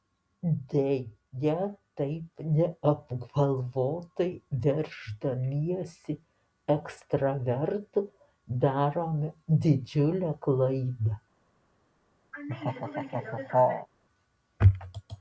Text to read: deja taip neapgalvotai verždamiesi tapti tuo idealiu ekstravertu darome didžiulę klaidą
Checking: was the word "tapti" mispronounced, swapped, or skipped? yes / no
yes